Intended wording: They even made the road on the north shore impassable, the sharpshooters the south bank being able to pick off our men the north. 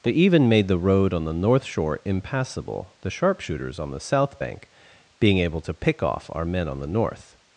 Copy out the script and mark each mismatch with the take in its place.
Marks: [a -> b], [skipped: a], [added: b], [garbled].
They even made the road on the north shore impassable, the sharpshooters [added: on] the south bank being able to pick off our men [added: on] the north.